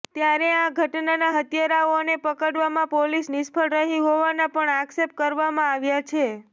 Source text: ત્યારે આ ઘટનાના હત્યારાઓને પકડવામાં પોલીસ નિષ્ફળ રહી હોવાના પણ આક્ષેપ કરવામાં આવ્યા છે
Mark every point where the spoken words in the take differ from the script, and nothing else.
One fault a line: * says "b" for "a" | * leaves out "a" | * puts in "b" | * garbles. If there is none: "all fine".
all fine